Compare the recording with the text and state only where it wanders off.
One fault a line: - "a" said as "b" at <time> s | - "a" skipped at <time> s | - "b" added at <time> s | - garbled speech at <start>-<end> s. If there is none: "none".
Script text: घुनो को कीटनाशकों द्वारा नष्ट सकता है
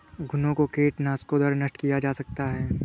- "किया जा" added at 1.7 s